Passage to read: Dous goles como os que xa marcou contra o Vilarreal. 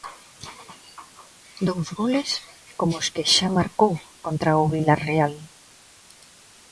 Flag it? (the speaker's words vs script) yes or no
no